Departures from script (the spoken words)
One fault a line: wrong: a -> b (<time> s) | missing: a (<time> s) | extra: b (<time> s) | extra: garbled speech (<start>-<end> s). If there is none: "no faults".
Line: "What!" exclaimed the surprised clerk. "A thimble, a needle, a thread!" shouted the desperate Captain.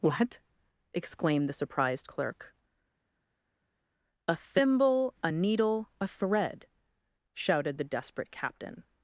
no faults